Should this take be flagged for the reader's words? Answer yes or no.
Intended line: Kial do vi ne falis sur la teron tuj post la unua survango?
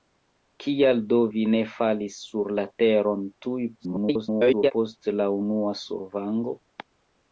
yes